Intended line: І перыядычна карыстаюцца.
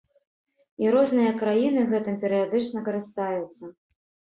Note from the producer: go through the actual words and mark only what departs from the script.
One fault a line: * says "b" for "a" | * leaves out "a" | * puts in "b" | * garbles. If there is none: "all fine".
* puts in "розныя краіны гэтым"